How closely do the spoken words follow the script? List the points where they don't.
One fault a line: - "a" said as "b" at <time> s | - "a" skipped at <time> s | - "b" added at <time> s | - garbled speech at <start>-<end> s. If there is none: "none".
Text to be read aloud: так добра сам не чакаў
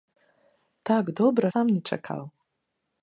none